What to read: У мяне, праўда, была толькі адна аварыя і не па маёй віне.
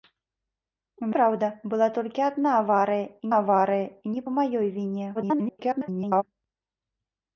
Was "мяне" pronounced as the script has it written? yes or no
no